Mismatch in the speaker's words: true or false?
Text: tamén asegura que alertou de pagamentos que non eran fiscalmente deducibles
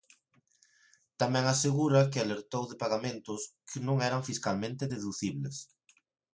false